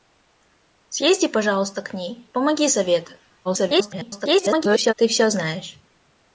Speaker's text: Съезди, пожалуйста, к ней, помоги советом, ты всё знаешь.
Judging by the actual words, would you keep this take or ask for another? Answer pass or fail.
fail